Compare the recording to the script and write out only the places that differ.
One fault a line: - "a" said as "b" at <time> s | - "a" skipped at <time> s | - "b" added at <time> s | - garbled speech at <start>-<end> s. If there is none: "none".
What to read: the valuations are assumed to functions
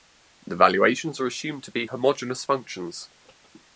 - "be homogeneous" added at 1.7 s